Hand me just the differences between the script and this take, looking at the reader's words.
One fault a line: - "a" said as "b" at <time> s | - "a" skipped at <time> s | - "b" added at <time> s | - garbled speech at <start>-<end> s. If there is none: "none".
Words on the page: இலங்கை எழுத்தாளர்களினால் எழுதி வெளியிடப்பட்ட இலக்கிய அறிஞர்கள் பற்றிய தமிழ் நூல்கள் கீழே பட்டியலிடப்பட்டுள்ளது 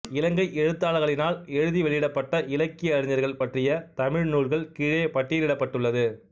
none